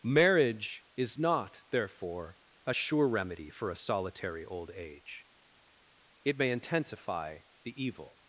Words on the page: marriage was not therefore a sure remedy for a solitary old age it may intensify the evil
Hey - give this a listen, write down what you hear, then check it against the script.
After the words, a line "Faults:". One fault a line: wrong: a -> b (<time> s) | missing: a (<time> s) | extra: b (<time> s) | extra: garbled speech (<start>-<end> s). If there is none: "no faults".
marriage is not therefore a sure remedy for a solitary old age it may intensify the evil
Faults:
wrong: was -> is (1.0 s)